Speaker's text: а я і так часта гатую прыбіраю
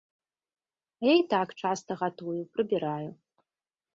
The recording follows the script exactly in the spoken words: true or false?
true